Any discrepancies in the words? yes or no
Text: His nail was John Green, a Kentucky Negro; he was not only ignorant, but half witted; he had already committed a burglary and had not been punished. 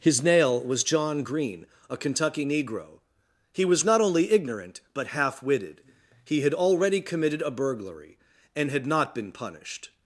no